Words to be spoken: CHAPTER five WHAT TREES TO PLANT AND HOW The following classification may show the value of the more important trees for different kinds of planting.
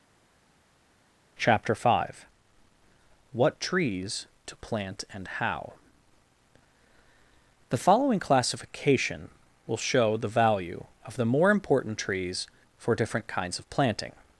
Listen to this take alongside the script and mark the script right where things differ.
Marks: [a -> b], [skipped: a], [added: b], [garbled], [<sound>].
CHAPTER five WHAT TREES TO PLANT AND HOW The following classification [may -> will] show the value of the more important trees for different kinds of planting.